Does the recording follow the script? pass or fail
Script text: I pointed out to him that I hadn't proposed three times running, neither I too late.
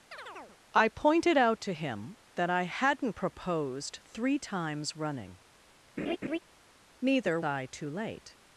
pass